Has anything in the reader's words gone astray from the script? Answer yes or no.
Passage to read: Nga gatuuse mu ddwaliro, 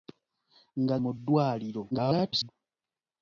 yes